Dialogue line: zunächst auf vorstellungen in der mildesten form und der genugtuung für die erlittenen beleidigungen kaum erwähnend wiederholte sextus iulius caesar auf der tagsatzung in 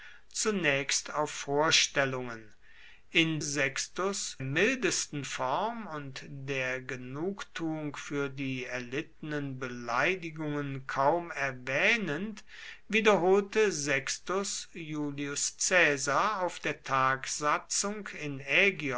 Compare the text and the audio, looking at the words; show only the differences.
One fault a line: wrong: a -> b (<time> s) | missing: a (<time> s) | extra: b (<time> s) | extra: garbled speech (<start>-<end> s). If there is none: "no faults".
wrong: der -> sextus (3.4 s)